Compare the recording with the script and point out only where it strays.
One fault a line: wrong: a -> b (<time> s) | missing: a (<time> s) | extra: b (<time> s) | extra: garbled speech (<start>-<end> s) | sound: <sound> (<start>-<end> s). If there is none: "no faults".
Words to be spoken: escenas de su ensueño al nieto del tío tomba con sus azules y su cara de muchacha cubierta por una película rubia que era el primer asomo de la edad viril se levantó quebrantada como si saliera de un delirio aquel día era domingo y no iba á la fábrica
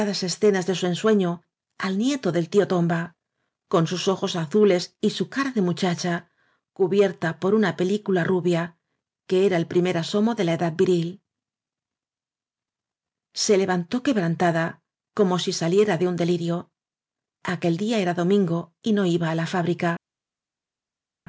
extra: ojos (4.1 s)